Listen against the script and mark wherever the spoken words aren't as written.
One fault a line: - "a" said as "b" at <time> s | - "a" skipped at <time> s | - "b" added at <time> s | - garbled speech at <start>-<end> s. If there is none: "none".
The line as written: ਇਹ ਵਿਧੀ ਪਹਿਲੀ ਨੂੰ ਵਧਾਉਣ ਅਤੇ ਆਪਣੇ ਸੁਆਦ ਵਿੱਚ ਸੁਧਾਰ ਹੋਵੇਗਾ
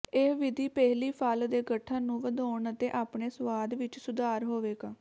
- "ਫਲ ਦੇ ਗਠਨ" added at 1.1 s